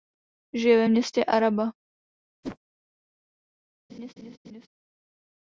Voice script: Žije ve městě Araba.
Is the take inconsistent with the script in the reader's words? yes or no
no